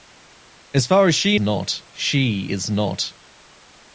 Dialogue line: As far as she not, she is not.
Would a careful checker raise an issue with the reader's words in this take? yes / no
no